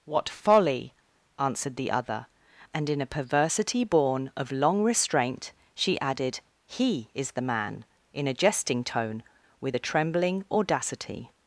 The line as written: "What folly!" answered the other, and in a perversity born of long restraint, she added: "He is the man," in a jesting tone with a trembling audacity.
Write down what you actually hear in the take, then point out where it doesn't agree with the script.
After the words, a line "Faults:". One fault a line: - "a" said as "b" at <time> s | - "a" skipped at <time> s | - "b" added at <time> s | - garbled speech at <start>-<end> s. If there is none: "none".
"What folly!" answered the other, and in a perversity born of long restraint, she added: "He is the man," in a jesting tone with a trembling audacity.
Faults:
none